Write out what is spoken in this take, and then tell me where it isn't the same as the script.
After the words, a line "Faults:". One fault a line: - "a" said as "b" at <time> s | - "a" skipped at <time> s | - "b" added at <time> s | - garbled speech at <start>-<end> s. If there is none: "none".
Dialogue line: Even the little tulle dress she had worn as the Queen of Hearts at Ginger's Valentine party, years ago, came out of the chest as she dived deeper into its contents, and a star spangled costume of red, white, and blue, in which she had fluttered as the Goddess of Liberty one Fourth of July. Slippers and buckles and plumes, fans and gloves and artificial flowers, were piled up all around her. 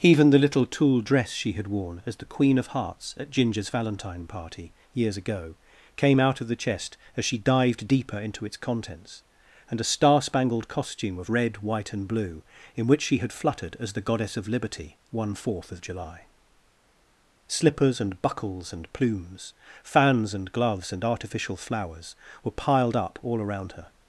Even the little tulle dress she had worn as the Queen of Hearts at Ginger's Valentine party, years ago, came out of the chest as she dived deeper into its contents, and a star spangled costume of red, white, and blue, in which she had fluttered as the Goddess of Liberty one Fourth of July. Slippers and buckles and plumes, fans and gloves and artificial flowers, were piled up all around her.
Faults:
none